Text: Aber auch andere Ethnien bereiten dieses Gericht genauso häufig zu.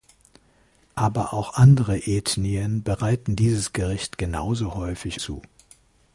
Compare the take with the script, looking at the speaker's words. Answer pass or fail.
pass